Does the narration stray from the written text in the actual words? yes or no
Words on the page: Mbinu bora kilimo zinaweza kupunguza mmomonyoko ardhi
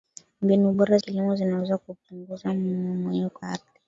no